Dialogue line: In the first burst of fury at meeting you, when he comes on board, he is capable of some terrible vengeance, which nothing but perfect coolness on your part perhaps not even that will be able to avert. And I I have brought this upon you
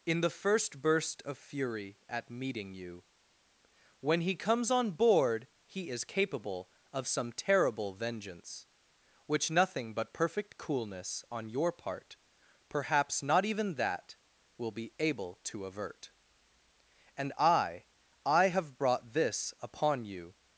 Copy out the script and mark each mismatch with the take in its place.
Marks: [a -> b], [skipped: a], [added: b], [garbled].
In the first burst of fury at meeting you, when he comes on board, he is capable of some terrible vengeance, which nothing but perfect coolness on your part perhaps not even that will be able to avert. And I I have brought this upon you